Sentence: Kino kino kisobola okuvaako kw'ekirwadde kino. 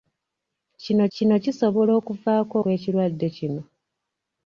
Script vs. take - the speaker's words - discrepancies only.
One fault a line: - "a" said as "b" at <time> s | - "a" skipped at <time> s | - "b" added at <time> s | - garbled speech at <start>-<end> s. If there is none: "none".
none